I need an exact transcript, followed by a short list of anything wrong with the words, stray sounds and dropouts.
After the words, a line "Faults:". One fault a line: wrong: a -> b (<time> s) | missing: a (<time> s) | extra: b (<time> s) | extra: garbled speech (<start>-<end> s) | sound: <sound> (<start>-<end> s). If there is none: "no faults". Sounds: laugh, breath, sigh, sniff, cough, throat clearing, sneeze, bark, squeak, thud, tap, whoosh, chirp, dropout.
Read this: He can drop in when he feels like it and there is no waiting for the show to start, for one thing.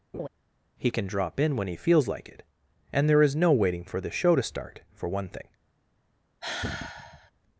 He can drop in when he feels like it and there is no waiting for the show to start, for one thing.
Faults:
sound: laugh (0.1-0.3 s)
sound: sigh (6.4-7.3 s)